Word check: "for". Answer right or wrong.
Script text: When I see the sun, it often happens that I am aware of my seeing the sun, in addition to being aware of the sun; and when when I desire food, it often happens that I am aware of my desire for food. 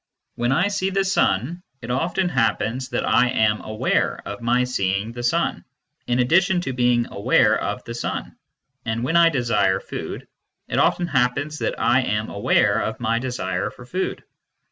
right